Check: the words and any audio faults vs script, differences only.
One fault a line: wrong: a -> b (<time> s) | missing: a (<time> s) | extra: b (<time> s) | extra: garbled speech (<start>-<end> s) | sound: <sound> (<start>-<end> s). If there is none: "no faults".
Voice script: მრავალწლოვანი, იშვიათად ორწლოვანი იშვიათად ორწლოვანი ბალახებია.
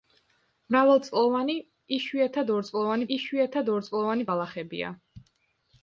no faults